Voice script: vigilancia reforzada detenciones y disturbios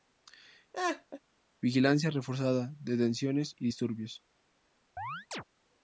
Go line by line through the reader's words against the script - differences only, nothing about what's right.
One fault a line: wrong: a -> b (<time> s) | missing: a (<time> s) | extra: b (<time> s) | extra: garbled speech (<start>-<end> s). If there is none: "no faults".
no faults